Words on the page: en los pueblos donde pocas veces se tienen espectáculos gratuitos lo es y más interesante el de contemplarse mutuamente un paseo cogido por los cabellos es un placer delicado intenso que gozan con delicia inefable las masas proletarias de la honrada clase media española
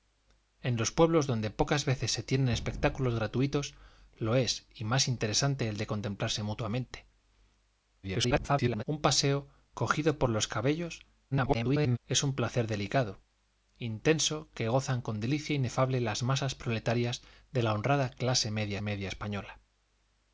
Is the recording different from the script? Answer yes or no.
yes